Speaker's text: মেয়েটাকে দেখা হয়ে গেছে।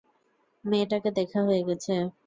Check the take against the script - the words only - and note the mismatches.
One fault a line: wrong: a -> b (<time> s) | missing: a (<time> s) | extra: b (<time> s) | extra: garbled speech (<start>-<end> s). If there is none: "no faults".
no faults